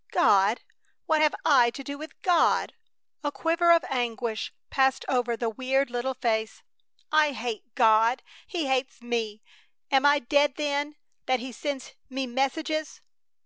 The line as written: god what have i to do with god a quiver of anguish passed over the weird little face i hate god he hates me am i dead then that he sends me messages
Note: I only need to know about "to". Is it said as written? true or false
true